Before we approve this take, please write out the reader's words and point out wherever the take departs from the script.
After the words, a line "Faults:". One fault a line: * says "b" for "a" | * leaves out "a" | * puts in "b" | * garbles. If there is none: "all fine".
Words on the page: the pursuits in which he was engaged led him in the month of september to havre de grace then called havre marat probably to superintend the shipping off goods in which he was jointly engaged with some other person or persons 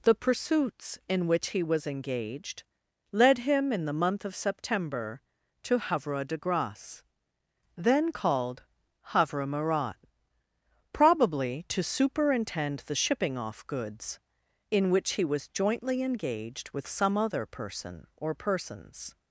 the pursuits in which he was engaged led him in the month of september to havre de grace then called havre marat probably to superintend the shipping off goods in which he was jointly engaged with some other person or persons
Faults:
all fine